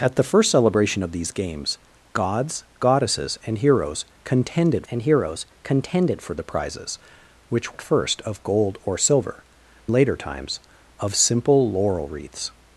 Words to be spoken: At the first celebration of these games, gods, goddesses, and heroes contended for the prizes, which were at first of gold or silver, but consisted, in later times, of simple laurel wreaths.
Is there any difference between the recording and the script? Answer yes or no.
yes